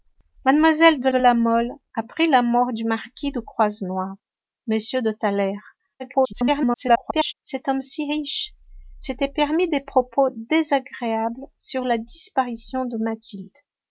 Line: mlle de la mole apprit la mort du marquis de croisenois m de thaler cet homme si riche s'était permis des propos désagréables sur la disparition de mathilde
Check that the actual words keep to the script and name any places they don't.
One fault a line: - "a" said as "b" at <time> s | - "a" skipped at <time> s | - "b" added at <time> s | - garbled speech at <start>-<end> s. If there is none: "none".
- "de" added at 1.1 s
- garbled speech at 6.0-7.3 s